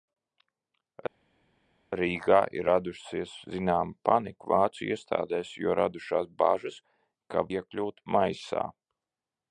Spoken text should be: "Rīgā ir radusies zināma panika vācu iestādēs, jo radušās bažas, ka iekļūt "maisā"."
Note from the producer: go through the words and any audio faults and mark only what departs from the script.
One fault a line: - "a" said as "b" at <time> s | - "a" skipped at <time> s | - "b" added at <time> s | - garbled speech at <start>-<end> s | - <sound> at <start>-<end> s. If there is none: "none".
none